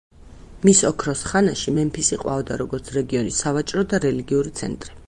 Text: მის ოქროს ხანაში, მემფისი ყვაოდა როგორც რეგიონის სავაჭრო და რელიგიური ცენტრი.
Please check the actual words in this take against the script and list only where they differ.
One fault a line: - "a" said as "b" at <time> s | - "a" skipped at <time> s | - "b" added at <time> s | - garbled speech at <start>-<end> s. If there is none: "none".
none